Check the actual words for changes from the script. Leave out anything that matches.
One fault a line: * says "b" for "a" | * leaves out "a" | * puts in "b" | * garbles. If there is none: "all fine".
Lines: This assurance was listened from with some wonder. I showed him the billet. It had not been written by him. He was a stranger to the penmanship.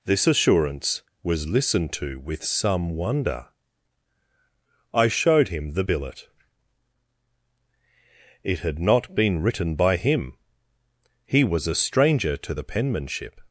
* says "to" for "from"